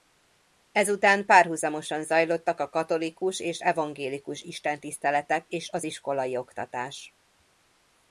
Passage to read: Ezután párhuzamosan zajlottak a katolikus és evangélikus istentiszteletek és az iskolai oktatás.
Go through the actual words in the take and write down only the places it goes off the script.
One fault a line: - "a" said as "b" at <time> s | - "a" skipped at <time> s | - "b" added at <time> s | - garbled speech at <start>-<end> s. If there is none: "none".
none